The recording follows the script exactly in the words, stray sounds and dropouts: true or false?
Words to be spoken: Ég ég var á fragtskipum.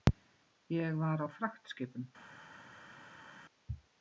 false